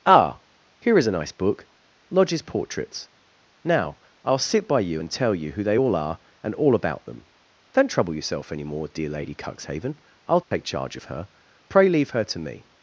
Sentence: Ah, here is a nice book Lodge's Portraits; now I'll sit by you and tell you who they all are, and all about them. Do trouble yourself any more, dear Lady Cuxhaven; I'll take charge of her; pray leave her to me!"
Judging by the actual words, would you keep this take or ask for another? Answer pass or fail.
fail